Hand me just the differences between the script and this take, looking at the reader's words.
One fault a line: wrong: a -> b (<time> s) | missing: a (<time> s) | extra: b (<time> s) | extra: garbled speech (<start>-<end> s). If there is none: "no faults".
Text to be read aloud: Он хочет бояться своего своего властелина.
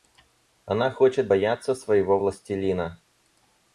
wrong: Он -> Она (0.7 s)
missing: своего (2.2 s)